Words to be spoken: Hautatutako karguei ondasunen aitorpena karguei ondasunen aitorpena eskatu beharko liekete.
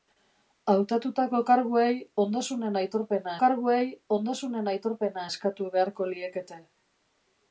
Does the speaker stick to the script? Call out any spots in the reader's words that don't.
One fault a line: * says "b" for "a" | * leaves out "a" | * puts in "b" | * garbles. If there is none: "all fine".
all fine